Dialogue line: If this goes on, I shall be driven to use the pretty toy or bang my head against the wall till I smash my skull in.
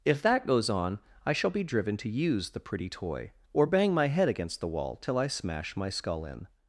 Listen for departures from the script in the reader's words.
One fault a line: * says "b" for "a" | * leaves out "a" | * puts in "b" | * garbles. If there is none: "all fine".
* says "that" for "this"